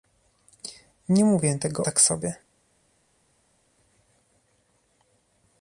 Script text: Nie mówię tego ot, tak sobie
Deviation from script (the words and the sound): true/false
true